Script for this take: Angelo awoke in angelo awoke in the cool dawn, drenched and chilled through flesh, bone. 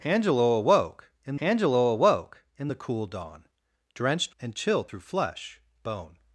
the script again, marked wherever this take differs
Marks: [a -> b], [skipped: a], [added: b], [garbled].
Angelo awoke in angelo awoke in the cool dawn, drenched and chilled through flesh, bone.